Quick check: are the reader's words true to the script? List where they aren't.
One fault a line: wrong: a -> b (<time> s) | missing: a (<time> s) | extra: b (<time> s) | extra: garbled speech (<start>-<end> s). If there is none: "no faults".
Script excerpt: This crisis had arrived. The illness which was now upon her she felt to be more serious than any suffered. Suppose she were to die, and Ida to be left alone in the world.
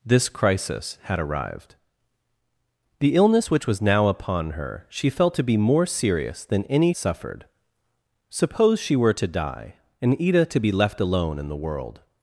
no faults